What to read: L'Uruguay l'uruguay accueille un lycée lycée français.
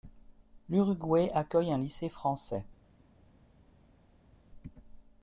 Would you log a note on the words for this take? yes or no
yes